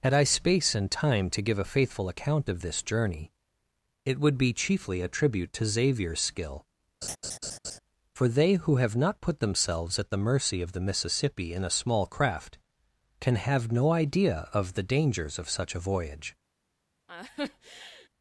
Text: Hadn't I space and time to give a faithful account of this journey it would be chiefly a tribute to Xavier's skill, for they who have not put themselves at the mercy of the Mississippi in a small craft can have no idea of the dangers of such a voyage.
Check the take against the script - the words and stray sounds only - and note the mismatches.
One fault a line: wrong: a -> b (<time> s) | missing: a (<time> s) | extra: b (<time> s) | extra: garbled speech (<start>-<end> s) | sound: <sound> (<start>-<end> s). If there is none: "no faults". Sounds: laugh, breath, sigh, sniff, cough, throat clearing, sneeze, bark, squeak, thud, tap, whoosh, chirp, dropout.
wrong: Hadn't -> Had (0.0 s)
sound: laugh (7.0-7.8 s)
sound: laugh (17.1-18.1 s)